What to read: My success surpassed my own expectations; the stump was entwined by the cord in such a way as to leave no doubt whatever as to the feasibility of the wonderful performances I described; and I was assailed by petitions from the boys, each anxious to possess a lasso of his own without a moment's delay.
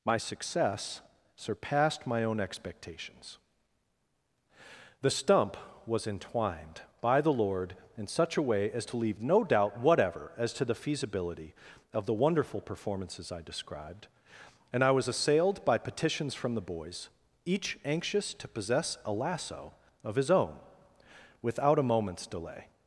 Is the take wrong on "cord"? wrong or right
wrong